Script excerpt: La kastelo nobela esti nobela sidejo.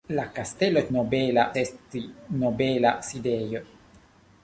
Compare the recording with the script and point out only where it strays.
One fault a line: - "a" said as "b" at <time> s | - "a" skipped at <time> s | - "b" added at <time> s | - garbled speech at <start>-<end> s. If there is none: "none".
none